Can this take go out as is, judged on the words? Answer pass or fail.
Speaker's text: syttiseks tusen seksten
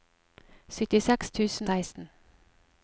pass